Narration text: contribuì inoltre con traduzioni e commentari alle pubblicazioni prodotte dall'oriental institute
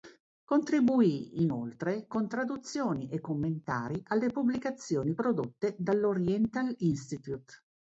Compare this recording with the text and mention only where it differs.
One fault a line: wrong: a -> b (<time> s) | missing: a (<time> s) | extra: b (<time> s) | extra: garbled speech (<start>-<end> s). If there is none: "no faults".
no faults